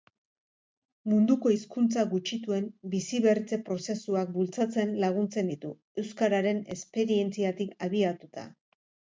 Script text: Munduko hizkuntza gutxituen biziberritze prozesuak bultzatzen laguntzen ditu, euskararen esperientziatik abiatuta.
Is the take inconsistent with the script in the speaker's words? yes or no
no